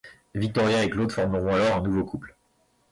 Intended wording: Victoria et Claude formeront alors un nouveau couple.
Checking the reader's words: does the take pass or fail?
pass